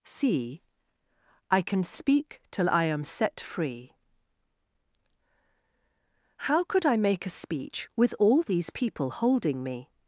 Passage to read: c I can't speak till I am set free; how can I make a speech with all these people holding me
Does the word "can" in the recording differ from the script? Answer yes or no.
yes